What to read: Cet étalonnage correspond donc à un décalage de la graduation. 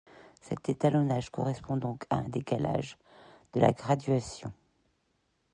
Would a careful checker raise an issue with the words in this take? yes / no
no